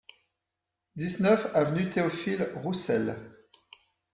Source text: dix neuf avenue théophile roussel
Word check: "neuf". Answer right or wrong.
right